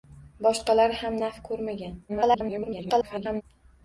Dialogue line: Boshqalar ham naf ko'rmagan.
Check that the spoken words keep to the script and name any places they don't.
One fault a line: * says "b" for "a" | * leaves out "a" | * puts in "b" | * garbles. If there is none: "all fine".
* garbles